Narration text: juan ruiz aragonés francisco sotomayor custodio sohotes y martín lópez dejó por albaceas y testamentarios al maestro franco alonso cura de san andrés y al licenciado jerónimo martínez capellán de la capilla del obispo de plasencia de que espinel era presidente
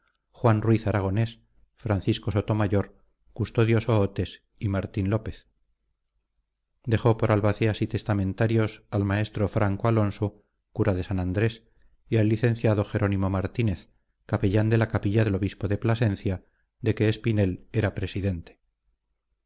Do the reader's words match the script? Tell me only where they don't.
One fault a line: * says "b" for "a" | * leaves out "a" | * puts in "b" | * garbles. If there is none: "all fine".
all fine